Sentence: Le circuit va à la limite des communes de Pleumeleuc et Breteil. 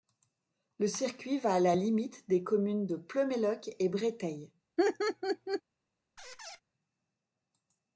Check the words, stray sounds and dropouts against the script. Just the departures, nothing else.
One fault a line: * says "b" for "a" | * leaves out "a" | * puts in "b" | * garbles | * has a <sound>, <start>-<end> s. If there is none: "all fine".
* has a laugh, 4.8-5.6 s
* has a squeak, 6.2-6.6 s